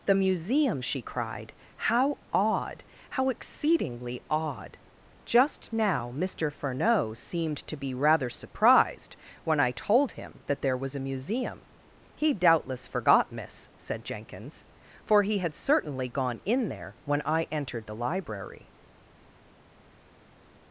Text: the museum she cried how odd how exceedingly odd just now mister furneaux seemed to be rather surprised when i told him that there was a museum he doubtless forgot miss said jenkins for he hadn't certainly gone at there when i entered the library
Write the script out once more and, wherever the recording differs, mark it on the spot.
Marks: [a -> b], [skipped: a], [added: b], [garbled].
the museum she cried how odd how exceedingly odd just now mister furneaux seemed to be rather surprised when i told him that there was a museum he doubtless forgot miss said jenkins for he [hadn't -> had] certainly gone [at -> in] there when i entered the library